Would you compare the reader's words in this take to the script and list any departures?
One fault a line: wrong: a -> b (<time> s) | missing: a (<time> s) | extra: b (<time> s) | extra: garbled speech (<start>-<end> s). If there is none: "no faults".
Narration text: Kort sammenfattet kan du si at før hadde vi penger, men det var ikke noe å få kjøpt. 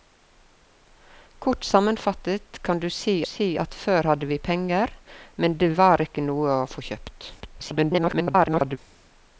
extra: si (3.2 s)
extra: garbled speech (7.4-8.8 s)